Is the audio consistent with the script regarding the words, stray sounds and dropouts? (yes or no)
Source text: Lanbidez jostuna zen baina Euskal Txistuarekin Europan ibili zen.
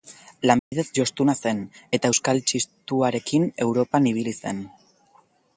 no